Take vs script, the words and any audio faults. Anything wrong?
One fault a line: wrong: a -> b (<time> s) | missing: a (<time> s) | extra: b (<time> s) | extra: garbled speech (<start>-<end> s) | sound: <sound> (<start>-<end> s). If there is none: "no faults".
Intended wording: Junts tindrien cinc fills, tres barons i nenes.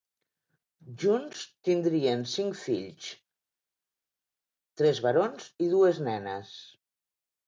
extra: dues (5.7 s)